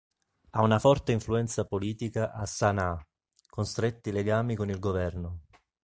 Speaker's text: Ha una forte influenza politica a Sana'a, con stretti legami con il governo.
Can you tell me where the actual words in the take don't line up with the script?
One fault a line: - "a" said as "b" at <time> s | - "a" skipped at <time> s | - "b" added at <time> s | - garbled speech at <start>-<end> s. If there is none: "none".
none